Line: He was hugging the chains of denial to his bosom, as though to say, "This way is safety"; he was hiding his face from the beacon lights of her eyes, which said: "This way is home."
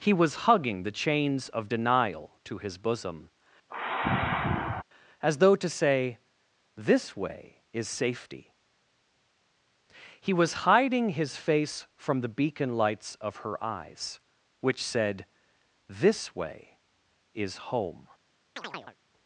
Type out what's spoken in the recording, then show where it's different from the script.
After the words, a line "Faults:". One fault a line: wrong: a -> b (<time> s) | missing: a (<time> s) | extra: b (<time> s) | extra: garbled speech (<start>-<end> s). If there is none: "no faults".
He was hugging the chains of denial to his bosom, as though to say, "This way is safety"; he was hiding his face from the beacon lights of her eyes, which said: "This way is home."
Faults:
no faults